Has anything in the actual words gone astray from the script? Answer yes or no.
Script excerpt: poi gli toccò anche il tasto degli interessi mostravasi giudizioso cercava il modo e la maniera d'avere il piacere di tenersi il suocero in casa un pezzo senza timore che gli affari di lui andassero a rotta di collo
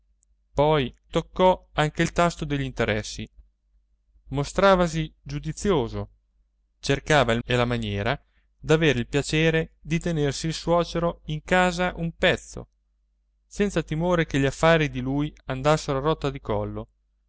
yes